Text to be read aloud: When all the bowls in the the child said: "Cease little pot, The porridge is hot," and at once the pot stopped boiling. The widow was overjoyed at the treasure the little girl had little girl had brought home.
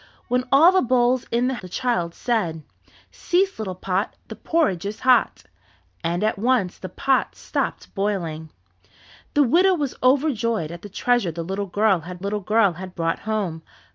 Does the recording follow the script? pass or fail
pass